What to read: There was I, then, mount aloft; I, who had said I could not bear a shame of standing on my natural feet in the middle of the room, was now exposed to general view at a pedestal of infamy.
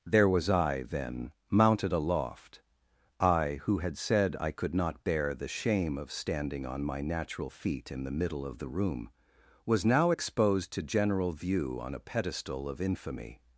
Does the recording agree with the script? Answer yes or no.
no